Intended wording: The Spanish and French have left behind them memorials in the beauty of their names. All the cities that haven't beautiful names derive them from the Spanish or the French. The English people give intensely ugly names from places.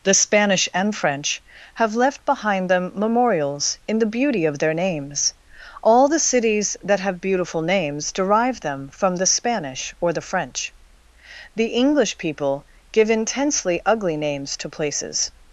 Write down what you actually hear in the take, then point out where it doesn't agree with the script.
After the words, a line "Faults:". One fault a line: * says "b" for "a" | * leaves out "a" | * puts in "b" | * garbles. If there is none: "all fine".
The Spanish and French have left behind them memorials in the beauty of their names. All the cities that have beautiful names derive them from the Spanish or the French. The English people give intensely ugly names to places.
Faults:
* says "have" for "haven't"
* says "to" for "from"